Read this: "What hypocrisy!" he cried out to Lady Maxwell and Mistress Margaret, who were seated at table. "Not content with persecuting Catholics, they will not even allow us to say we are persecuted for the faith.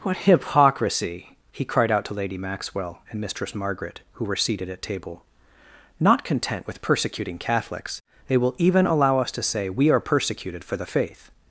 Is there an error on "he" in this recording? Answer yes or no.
no